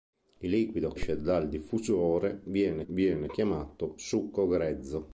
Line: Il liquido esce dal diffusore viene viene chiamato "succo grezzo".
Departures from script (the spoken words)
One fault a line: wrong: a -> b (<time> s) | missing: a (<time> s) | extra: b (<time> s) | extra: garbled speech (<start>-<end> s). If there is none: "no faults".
no faults